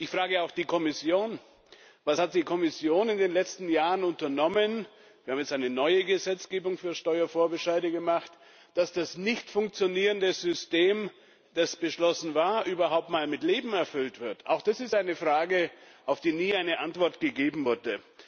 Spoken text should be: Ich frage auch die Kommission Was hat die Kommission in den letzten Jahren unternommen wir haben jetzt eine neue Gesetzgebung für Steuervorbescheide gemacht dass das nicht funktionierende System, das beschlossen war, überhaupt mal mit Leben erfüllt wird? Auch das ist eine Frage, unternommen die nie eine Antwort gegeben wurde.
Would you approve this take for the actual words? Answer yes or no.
no